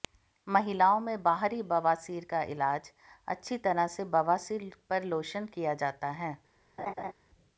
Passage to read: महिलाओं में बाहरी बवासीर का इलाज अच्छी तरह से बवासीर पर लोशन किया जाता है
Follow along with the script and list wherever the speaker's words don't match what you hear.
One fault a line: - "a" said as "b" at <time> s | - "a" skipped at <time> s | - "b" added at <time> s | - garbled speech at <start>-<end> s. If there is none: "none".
none